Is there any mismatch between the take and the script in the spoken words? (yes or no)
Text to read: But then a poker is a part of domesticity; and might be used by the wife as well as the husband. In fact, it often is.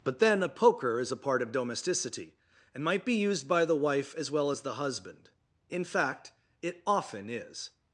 no